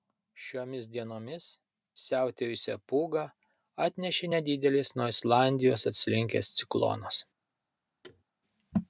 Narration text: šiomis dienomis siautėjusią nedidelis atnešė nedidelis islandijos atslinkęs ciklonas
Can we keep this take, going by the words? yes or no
no